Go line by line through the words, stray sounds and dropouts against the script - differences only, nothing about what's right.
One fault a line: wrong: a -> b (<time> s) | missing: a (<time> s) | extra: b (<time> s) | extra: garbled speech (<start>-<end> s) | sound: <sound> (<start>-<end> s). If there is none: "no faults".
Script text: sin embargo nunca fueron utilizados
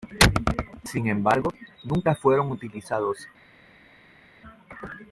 no faults